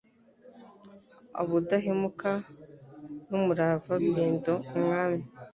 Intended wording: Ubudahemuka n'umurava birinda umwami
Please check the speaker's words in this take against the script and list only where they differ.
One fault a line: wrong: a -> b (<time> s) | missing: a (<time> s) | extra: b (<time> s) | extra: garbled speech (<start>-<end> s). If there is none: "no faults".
no faults